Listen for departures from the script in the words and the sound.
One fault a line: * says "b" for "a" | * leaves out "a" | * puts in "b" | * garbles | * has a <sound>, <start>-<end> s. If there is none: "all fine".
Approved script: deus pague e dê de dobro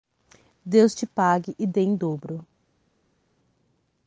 * puts in "te"
* says "em" for "de"